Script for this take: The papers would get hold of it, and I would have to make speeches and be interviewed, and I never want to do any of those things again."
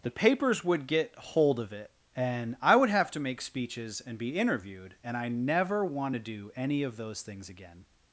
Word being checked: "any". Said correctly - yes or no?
yes